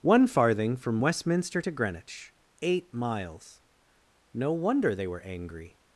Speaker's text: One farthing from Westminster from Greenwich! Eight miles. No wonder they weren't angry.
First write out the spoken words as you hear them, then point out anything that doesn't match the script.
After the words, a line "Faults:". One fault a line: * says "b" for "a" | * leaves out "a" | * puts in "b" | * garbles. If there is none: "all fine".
One farthing from Westminster to Greenwich! Eight miles. No wonder they were angry.
Faults:
* says "to" for "from"
* says "were" for "weren't"